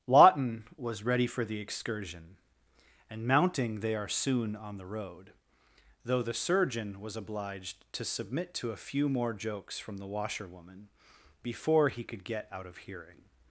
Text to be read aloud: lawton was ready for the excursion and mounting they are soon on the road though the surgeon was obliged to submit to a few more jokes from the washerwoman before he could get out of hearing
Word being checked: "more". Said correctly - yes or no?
yes